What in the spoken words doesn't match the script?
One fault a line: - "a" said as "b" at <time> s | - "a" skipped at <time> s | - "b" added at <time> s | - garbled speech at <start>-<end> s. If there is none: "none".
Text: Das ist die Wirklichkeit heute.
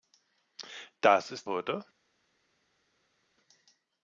- "die Wirklichkeit" skipped at 1.5 s